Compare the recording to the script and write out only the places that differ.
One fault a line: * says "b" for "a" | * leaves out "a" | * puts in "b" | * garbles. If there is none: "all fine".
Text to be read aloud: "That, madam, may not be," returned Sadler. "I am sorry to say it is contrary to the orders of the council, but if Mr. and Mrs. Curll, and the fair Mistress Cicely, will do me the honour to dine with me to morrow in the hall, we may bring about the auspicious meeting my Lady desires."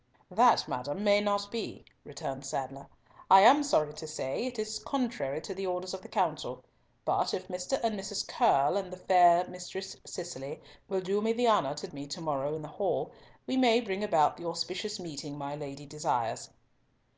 * leaves out "dine with"